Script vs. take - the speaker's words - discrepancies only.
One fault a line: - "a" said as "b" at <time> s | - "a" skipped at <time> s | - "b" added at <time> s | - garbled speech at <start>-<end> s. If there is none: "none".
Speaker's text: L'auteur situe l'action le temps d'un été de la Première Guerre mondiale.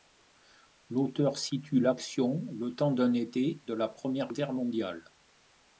none